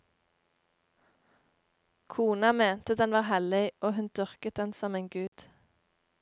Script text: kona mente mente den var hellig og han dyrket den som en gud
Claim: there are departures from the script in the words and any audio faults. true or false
true